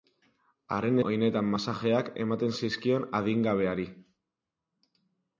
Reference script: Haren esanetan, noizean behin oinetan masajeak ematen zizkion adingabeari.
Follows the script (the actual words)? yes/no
no